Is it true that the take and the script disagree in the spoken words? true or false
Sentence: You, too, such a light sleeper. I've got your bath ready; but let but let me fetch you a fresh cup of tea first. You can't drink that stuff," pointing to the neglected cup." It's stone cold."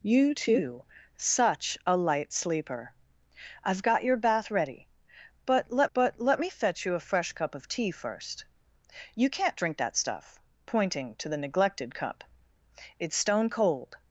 false